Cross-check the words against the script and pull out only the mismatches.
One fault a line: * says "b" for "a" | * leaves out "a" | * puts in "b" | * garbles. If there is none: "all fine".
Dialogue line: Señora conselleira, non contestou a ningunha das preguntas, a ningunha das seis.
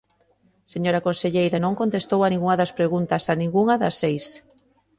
all fine